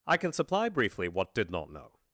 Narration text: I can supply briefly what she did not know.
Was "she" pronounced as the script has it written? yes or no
no